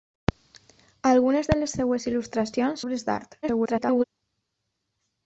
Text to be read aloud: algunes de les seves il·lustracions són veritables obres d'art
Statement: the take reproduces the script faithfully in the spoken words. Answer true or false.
false